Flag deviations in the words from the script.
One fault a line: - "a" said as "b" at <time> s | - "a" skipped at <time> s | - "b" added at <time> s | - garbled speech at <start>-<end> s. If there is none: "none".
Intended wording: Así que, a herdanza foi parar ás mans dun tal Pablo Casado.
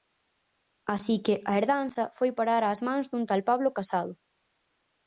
none